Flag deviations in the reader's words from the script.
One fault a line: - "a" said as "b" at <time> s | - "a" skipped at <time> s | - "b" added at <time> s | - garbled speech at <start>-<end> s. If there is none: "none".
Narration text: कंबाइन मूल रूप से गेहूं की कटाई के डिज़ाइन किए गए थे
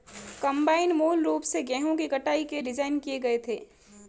none